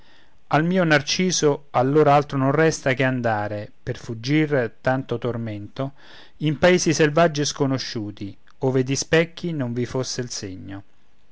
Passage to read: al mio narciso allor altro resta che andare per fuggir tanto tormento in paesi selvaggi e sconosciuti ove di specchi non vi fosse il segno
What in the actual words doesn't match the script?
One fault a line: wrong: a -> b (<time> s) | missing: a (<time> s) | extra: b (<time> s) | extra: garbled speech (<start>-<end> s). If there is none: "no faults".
extra: non (2.4 s)